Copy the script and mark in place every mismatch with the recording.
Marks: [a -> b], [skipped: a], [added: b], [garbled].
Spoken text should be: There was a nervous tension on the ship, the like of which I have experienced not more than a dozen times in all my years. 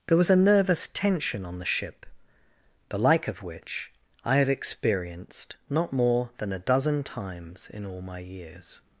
There was a nervous tension on the ship, the like of which I have experienced not more than a dozen times in all my years.